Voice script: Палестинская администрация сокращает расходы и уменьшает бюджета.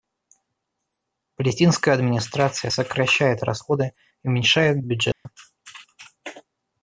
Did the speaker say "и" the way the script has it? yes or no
yes